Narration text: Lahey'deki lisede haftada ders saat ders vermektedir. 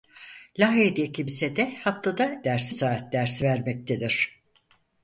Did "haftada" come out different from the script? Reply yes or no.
no